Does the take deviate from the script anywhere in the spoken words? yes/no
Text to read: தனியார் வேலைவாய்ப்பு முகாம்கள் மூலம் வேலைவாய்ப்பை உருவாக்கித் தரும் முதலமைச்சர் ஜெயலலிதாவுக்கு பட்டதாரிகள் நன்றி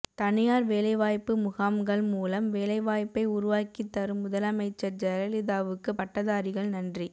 no